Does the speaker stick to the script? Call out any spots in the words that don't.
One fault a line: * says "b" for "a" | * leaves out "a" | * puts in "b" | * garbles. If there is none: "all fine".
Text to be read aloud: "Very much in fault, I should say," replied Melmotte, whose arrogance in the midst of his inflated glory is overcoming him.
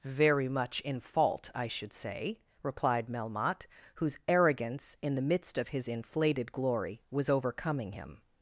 * says "was" for "is"